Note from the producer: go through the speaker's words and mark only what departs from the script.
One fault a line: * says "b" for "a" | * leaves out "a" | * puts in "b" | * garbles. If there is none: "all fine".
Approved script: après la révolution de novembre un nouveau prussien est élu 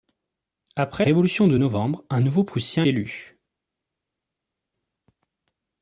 * leaves out "la"
* leaves out "est"